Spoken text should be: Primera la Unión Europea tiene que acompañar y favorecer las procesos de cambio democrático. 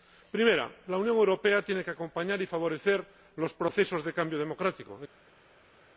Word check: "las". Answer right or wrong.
wrong